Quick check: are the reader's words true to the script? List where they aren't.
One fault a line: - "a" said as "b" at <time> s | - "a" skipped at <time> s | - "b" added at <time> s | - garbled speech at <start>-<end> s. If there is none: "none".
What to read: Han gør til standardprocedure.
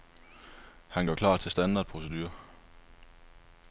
- "klar" added at 1.1 s